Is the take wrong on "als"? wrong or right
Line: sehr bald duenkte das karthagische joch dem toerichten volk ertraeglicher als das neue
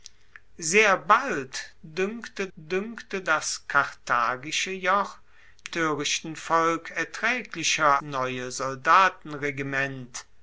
wrong